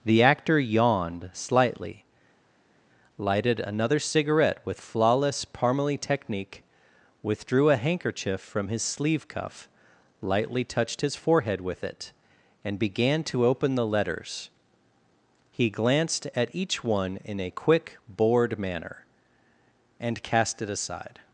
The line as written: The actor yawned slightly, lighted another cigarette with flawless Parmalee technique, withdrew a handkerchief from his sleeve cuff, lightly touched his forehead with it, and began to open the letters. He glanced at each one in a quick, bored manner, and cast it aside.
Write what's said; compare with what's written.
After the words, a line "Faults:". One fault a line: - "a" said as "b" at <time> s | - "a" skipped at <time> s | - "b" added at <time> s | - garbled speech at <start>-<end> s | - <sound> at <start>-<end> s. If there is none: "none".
The actor yawned slightly, lighted another cigarette with flawless Parmalee technique, withdrew a handkerchief from his sleeve cuff, lightly touched his forehead with it, and began to open the letters. He glanced at each one in a quick, bored manner, and cast it aside.
Faults:
none